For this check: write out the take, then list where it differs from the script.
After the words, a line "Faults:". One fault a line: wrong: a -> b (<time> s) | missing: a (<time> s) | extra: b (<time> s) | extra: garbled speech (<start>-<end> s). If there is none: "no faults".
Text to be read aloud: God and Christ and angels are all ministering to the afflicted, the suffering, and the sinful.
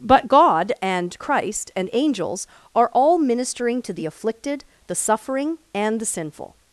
but God and Christ and angels are all ministering to the afflicted, the suffering, and the sinful.
Faults:
extra: but (0.0 s)